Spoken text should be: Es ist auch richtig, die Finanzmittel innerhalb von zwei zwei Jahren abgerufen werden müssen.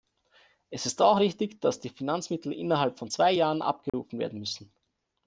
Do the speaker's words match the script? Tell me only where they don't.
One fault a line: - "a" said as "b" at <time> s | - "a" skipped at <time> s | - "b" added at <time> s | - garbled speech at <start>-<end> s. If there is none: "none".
- "dass" added at 1.6 s
- "zwei" skipped at 3.3 s